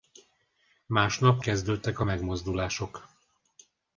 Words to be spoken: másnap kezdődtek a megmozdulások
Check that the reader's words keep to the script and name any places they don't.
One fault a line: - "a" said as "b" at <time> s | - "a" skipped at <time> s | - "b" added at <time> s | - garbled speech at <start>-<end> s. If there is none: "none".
none